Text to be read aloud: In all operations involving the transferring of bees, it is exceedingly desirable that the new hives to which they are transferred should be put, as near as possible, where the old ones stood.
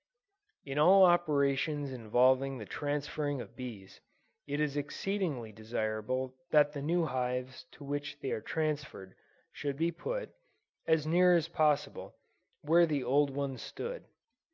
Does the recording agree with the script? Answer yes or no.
yes